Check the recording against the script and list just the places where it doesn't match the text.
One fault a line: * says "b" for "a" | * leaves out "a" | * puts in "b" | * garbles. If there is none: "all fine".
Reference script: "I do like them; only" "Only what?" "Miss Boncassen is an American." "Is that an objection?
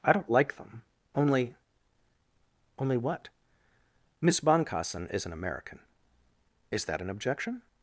* says "don't" for "do"